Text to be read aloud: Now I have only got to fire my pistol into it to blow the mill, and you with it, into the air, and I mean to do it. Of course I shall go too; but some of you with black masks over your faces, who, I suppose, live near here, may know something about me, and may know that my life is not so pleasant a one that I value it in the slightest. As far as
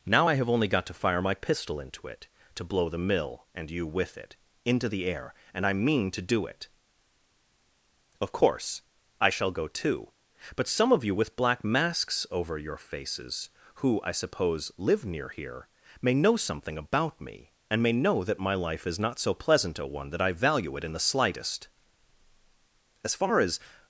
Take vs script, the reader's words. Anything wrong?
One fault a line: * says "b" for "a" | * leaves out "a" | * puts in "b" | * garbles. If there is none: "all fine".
all fine